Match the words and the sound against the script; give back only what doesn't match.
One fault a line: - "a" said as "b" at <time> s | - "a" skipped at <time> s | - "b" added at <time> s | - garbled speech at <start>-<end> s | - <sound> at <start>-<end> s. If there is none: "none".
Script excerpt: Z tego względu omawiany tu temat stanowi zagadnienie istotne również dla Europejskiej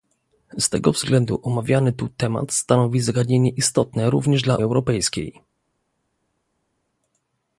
none